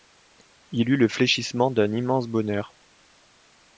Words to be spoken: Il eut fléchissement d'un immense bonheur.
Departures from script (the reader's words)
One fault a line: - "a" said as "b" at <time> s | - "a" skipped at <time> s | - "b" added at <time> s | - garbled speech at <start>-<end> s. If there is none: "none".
- "le" added at 1.0 s